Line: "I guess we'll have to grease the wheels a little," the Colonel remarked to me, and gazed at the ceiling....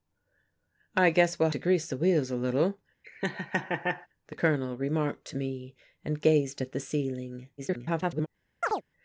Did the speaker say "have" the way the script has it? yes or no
no